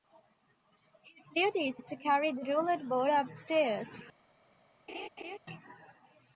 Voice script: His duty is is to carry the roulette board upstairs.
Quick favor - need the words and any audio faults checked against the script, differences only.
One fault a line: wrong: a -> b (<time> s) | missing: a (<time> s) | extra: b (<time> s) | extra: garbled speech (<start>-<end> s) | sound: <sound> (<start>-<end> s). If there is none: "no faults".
sound: laugh (4.9-5.4 s)